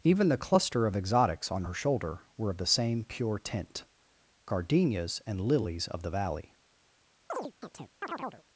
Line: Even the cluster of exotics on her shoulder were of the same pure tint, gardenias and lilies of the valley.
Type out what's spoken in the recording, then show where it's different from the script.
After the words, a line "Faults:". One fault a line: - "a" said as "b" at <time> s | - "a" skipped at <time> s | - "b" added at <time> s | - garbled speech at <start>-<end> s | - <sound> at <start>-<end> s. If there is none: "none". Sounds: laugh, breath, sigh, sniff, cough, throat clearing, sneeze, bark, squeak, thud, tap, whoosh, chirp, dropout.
Even the cluster of exotics on her shoulder were of the same pure tint, gardenias and lilies of the valley.
Faults:
- chirp at 7.3-8.4 s